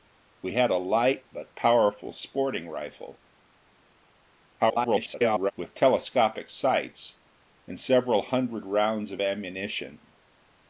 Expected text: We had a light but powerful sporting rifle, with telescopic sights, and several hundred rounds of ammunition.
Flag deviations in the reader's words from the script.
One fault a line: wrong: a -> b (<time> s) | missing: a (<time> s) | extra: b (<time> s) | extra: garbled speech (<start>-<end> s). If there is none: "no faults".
extra: garbled speech (4.6-5.5 s)